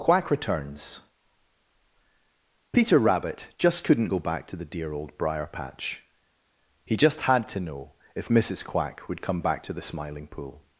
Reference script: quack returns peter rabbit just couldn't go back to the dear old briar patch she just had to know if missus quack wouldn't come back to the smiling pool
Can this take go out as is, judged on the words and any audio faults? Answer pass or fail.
fail